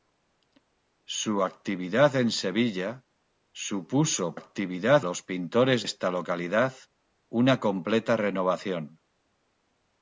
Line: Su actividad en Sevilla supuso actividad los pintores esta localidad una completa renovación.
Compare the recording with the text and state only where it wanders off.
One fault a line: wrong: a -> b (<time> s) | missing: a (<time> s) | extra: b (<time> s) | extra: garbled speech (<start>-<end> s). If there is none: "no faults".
no faults